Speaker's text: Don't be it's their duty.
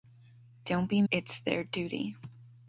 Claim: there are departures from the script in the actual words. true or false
false